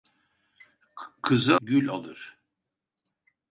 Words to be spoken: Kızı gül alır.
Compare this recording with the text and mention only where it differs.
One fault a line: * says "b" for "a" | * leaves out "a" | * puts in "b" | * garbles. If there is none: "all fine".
all fine